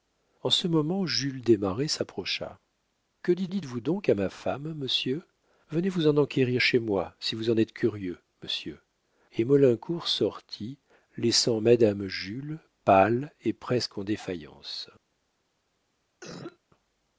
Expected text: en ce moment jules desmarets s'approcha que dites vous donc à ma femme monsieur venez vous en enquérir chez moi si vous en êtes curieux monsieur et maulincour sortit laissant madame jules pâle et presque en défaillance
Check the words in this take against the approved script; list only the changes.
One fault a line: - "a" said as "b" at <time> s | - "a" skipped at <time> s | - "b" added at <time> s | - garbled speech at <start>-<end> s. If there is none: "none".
- "dites" added at 3.5 s